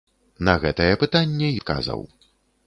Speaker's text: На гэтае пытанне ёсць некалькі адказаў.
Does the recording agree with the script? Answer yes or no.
no